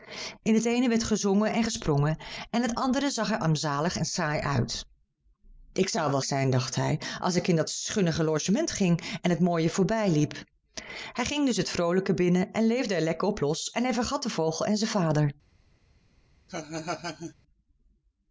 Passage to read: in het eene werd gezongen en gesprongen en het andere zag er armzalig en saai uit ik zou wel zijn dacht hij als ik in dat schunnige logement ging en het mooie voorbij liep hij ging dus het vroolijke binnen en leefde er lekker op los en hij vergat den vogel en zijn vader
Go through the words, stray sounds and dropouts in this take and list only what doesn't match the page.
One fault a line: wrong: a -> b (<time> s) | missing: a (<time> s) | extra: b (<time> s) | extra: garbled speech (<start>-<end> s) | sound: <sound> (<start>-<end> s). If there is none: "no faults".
sound: laugh (16.5-17.3 s)